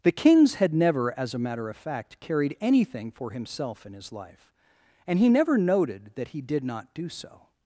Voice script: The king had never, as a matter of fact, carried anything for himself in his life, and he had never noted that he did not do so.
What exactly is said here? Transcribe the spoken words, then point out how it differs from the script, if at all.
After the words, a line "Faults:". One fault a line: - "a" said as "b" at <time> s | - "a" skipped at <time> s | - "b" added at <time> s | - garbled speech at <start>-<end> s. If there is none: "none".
The kings had never, as a matter of fact, carried anything for himself in his life, and he never noted that he did not do so.
Faults:
- "king" said as "kings" at 0.1 s
- "had" skipped at 5.3 s